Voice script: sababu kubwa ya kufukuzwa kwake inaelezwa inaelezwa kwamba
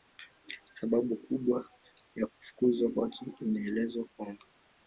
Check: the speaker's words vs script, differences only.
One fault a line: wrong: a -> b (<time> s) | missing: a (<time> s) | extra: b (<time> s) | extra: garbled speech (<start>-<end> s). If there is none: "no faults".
missing: inaelezwa (4.1 s)